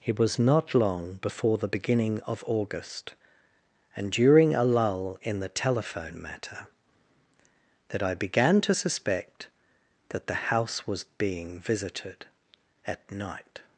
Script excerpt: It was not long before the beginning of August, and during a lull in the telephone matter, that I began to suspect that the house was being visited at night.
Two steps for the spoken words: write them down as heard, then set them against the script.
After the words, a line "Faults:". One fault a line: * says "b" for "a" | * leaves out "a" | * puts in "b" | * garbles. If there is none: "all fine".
It was not long before the beginning of August, and during a lull in the telephone matter, that I began to suspect that the house was being visited at night.
Faults:
all fine